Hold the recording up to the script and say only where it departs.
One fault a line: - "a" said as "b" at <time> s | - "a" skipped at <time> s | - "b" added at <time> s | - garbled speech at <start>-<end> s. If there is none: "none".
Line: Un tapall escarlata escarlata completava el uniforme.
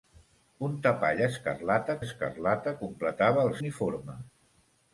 none